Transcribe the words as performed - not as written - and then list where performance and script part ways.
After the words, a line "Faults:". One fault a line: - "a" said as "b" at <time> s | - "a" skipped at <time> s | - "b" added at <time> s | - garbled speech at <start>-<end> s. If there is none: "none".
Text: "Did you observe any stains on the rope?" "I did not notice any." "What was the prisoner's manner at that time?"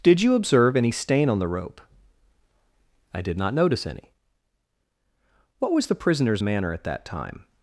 "Did you observe any stain on the rope?" "I did not notice any." "What was the prisoner's manner at that time?"
Faults:
- "stains" said as "stain" at 0.9 s